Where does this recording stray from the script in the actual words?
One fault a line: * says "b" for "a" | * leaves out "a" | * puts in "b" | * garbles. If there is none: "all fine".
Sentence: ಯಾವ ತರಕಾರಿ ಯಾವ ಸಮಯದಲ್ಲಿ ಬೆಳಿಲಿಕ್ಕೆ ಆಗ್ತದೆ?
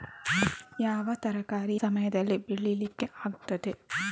* leaves out "ಯಾವ"